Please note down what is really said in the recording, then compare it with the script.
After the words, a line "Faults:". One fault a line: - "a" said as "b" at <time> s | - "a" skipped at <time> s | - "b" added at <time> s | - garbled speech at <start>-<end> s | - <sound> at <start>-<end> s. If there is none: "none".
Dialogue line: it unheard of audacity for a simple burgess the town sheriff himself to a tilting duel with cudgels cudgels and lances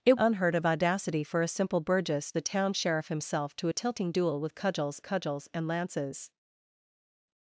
it unheard of audacity for a simple burgess the town sheriff himself to a tilting duel with cudgels cudgels and lances
Faults:
none